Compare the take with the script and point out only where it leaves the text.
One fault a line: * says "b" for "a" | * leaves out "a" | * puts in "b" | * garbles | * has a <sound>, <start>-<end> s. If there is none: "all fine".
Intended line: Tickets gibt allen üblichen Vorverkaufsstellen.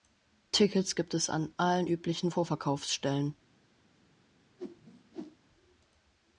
* puts in "es an"
* has a whoosh, 4.6-5.4 s